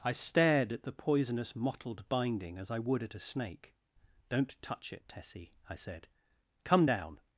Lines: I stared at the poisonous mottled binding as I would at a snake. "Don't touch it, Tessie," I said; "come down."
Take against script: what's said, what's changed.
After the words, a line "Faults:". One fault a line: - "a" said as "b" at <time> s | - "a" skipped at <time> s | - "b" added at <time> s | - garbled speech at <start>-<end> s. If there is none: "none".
I stared at the poisonous mottled binding as I would at a snake. "Don't touch it, Tessie," I said; "come down."
Faults:
none